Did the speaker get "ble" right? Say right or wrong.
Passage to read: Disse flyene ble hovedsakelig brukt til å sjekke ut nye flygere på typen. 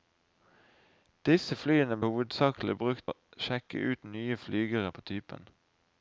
wrong